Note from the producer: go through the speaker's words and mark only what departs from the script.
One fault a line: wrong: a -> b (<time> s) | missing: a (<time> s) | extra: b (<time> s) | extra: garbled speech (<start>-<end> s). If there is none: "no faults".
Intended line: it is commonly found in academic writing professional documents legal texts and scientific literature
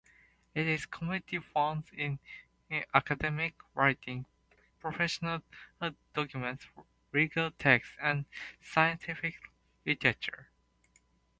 no faults